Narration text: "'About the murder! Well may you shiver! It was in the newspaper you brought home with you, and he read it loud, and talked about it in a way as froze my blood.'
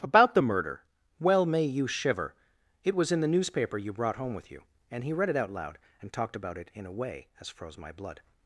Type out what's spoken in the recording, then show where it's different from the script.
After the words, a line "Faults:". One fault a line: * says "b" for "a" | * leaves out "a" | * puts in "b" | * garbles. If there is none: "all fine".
"'About the murder! Well may you shiver! It was in the newspaper you brought home with you, and he read it out loud, and talked about it in a way as froze my blood.'
Faults:
* puts in "out"